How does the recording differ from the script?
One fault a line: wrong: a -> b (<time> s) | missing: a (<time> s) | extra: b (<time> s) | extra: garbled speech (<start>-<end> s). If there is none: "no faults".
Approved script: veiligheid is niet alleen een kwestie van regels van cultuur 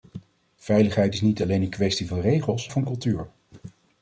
no faults